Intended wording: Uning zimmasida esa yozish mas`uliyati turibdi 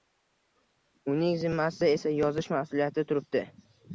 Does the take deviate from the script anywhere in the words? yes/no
no